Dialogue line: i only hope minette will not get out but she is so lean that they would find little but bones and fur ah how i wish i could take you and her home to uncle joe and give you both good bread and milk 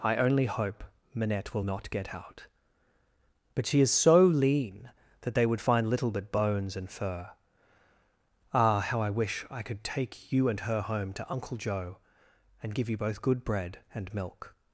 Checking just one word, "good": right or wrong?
right